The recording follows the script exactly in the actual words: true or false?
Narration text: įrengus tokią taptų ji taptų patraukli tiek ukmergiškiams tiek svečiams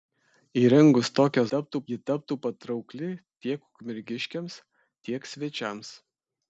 true